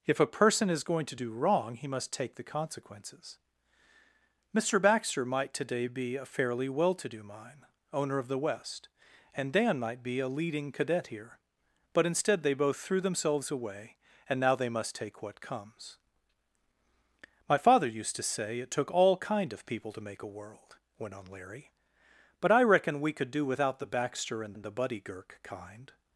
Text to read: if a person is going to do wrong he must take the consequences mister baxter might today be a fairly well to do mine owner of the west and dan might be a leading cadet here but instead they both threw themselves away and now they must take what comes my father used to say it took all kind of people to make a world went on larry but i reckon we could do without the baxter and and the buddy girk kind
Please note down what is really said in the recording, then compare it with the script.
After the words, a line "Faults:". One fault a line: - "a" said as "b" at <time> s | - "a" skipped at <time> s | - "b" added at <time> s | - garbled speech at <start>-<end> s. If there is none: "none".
if a person is going to do wrong he must take the consequences mister baxter might today be a fairly well to do mine owner of the west and dan might be a leading cadet here but instead they both threw themselves away and now they must take what comes my father used to say it took all kind of people to make a world went on larry but i reckon we could do without the baxter and and the buddy girk kind
Faults:
none